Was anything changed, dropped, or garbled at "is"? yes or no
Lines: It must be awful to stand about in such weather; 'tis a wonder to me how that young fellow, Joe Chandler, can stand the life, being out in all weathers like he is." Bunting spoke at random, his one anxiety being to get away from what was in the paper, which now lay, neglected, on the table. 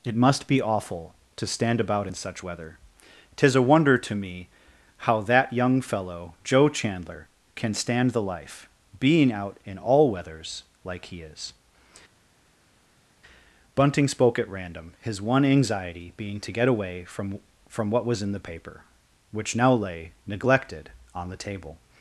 no